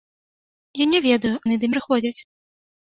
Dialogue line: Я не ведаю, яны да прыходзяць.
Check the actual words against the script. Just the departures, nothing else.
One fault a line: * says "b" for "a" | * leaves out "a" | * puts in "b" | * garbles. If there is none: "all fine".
all fine